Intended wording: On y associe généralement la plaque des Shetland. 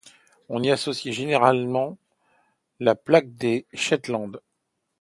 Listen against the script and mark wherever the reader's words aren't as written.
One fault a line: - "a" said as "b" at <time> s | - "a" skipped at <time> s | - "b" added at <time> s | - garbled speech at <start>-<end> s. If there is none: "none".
none